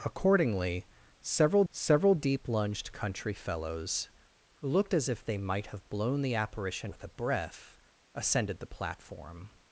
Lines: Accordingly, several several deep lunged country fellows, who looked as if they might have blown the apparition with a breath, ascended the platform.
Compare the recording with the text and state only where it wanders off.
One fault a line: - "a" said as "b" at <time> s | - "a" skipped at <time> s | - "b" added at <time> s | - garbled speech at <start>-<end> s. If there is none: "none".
none